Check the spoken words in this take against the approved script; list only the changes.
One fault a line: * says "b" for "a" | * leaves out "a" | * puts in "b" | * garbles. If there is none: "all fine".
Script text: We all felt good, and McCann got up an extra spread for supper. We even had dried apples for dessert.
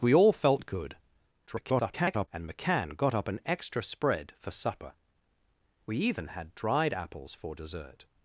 * garbles